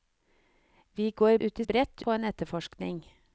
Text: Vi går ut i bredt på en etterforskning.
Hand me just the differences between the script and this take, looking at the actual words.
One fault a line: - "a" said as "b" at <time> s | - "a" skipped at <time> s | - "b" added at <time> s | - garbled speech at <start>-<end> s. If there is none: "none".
none